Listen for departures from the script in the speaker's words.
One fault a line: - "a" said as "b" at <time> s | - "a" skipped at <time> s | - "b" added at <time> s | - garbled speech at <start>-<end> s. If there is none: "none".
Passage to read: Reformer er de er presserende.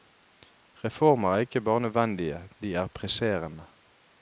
- "ikke bare nødvendige" added at 1.4 s